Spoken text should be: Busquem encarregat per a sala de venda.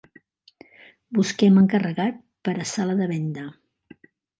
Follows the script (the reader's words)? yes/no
yes